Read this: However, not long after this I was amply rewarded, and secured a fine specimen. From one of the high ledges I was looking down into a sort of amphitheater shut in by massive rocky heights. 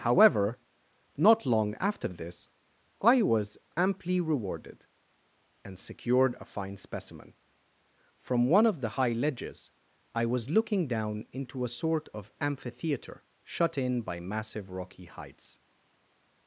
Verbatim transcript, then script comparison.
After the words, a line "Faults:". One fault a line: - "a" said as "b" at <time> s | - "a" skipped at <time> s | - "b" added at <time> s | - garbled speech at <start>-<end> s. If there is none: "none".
However, not long after this I was amply rewarded, and secured a fine specimen. From one of the high ledges I was looking down into a sort of amphitheater shut in by massive rocky heights.
Faults:
none